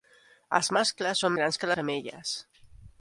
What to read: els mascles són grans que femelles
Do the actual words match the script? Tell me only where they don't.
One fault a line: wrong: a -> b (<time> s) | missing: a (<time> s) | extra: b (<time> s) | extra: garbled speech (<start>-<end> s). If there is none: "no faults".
no faults